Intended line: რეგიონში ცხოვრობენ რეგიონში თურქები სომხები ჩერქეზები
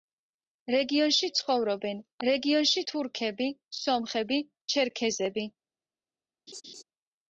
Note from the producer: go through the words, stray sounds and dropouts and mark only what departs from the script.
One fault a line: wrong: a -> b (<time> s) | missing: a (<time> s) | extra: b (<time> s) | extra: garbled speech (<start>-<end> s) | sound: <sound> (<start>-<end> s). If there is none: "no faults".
sound: laugh (6.5-6.8 s)